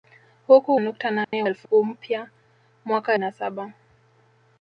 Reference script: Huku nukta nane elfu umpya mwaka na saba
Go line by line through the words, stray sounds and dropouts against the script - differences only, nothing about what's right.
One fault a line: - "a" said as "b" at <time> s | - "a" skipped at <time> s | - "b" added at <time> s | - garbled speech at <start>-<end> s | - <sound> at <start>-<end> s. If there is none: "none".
- dropout at 1.2-1.3 s